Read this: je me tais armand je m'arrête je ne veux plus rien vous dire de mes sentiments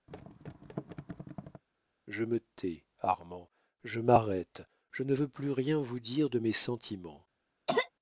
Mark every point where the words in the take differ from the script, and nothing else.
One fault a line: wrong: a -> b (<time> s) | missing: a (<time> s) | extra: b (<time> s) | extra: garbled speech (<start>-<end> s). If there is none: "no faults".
no faults